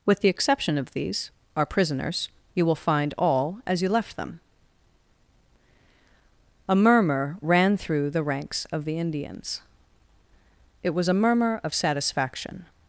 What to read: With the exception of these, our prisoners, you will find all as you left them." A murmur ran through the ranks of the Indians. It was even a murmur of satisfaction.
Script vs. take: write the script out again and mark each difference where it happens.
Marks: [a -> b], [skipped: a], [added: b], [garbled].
With the exception of these, our prisoners, you will find all as you left them." A murmur ran through the ranks of the Indians. It was [skipped: even] a murmur of satisfaction.